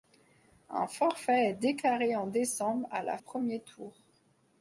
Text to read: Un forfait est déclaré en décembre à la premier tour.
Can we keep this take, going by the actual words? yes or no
yes